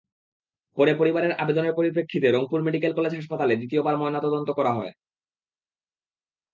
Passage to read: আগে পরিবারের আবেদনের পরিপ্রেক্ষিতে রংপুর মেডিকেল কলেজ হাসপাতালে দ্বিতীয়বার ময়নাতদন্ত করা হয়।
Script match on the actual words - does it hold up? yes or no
no